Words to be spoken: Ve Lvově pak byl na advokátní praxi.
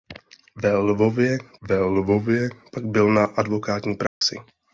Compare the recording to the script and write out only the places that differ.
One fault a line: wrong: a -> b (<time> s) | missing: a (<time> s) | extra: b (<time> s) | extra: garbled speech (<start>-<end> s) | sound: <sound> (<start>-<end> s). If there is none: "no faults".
extra: ve Lvově (1.6 s)
sound: dropout (4.1-4.2 s)